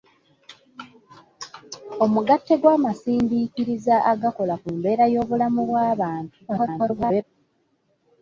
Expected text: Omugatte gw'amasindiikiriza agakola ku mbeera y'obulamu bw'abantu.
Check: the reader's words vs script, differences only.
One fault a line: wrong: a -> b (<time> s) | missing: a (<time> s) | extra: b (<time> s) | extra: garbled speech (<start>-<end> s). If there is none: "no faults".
extra: garbled speech (6.5-7.2 s)